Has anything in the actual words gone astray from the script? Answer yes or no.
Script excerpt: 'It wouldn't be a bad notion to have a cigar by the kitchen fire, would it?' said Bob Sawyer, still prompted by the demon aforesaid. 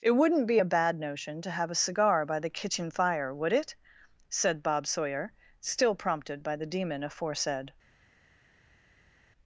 no